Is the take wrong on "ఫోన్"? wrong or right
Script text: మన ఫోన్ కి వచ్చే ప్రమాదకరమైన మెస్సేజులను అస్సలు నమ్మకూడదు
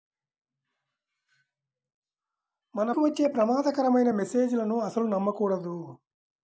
wrong